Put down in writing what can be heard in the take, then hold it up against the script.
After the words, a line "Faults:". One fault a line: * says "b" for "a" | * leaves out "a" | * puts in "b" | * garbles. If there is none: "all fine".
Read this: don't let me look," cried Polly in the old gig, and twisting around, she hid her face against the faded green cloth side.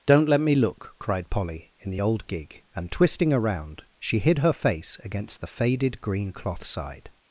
don't let me look," cried Polly in the old gig, and twisting around, she hid her face against the faded green cloth side.
Faults:
all fine